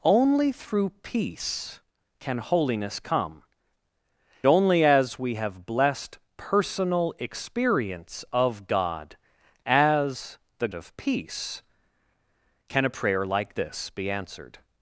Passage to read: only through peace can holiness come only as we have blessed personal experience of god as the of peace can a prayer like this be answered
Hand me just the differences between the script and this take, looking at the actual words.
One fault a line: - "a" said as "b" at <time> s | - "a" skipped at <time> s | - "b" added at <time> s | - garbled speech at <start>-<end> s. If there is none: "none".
none